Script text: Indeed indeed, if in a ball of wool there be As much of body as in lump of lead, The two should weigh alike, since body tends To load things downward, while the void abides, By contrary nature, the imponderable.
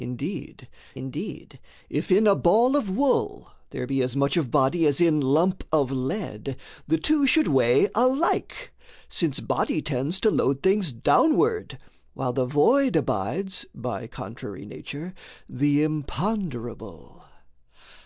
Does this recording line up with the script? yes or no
yes